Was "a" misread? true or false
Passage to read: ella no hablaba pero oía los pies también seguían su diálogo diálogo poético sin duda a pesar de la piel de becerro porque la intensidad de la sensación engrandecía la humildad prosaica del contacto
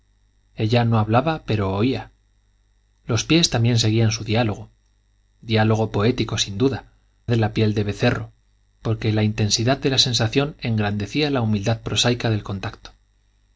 true